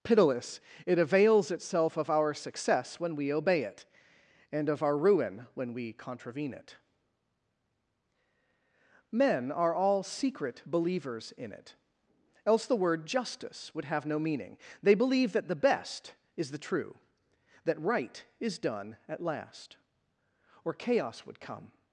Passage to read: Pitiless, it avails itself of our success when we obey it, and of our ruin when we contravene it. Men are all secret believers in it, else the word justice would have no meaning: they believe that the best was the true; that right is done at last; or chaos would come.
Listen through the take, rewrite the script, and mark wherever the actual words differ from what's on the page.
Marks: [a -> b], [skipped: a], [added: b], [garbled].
Pitiless, it avails itself of our success when we obey it, and of our ruin when we contravene it. Men are all secret believers in it, else the word justice would have no meaning: they believe that the best [was -> is] the true; that right is done at last; or chaos would come.